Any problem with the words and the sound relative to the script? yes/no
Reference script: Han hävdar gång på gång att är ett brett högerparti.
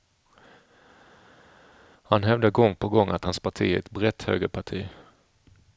yes